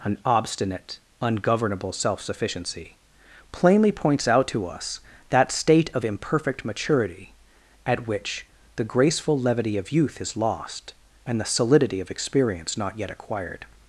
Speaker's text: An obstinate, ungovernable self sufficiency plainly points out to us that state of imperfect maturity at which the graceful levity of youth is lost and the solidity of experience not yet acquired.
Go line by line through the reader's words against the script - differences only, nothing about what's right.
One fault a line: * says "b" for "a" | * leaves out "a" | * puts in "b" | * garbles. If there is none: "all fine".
all fine